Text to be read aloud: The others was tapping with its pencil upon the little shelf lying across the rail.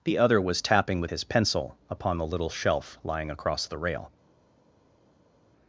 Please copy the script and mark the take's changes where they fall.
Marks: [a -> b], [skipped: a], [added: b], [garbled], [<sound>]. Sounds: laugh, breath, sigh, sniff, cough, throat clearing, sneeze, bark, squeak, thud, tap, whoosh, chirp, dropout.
The [others -> other] was tapping with [its -> his] pencil upon the little shelf lying across the rail.